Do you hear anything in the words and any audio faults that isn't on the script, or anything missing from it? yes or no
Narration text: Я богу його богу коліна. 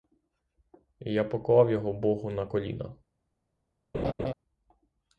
yes